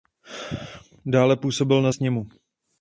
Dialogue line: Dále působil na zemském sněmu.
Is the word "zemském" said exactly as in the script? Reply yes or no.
no